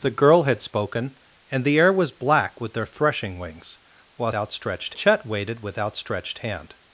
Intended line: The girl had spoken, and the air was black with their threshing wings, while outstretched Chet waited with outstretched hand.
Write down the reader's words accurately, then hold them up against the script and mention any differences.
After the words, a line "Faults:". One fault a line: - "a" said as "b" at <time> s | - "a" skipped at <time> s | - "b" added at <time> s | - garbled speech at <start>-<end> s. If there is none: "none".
The girl had spoken, and the air was black with their threshing wings, while outstretched Chet waited with outstretched hand.
Faults:
none